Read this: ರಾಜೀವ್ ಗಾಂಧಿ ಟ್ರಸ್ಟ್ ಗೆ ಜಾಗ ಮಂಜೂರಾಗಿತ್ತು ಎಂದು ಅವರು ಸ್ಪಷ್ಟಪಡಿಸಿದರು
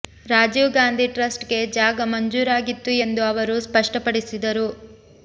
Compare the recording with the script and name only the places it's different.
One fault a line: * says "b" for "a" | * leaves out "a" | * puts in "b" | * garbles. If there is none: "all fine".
all fine